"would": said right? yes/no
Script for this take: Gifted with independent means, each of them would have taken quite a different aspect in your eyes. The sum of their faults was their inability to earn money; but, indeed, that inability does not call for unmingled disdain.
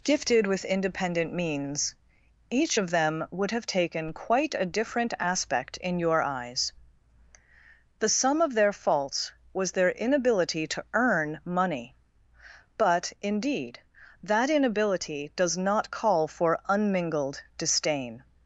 yes